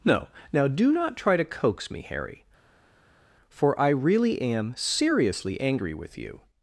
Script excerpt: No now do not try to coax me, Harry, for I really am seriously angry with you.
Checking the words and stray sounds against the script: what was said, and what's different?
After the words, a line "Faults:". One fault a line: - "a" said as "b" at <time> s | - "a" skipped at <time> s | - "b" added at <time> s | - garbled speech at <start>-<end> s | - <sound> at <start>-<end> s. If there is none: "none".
No now do not try to coax me, Harry, for I really am seriously angry with you.
Faults:
none